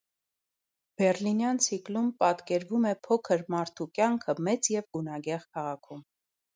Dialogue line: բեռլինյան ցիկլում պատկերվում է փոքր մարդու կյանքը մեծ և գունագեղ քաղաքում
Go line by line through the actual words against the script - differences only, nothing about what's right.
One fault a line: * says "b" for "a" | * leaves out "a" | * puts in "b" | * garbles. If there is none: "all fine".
all fine